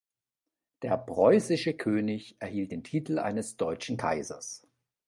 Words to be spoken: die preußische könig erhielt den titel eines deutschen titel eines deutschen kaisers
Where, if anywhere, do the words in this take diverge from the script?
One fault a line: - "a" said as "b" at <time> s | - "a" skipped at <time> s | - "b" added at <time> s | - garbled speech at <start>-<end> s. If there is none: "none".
- "die" said as "der" at 0.8 s
- "titel eines deutschen" skipped at 4.0 s